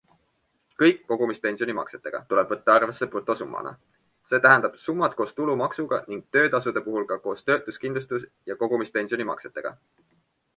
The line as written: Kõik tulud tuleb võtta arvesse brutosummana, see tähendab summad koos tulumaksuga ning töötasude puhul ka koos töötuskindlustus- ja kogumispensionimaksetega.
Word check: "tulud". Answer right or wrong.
wrong